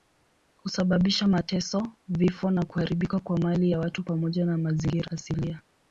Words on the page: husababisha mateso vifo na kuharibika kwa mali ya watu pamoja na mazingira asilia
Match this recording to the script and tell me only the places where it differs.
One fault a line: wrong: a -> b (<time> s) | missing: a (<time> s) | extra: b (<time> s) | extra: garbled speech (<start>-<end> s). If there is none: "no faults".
no faults